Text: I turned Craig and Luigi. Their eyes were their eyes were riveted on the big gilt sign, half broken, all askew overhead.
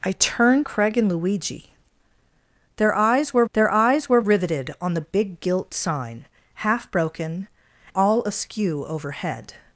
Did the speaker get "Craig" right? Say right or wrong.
right